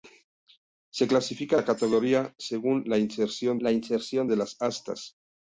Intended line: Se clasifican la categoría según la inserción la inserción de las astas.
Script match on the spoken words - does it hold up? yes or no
yes